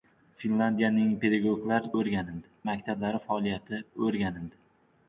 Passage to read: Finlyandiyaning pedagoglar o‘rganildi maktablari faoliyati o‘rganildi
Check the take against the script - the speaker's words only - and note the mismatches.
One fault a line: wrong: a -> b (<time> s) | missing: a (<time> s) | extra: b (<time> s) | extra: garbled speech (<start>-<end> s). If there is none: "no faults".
no faults